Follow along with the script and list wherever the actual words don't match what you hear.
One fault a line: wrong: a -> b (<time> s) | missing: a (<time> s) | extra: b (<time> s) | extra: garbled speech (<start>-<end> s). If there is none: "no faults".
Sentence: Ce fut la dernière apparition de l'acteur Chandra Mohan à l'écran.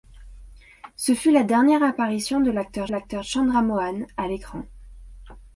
extra: l'acteur (2.9 s)